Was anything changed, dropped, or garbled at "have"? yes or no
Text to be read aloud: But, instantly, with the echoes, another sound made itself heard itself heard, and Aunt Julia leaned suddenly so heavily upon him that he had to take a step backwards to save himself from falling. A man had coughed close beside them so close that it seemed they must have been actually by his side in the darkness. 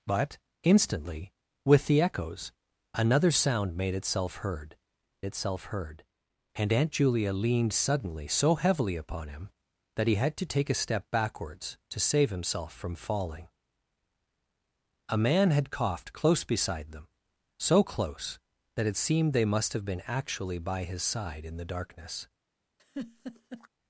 no